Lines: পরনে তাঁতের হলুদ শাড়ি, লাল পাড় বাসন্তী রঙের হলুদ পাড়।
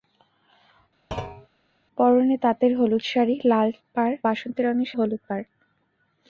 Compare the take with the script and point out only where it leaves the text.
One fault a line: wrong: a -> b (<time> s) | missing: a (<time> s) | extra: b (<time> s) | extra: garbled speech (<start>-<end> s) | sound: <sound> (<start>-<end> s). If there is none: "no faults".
sound: thud (1.1-1.5 s)